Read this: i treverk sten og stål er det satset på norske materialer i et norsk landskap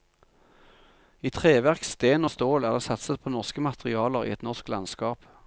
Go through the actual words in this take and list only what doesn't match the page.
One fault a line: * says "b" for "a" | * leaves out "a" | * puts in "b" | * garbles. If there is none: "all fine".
all fine